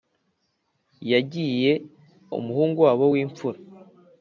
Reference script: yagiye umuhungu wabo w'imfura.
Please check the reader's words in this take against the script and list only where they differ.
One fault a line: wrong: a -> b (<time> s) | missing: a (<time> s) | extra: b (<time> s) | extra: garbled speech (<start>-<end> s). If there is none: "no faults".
no faults